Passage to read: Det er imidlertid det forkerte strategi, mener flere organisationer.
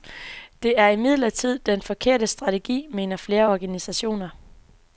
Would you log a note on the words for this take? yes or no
yes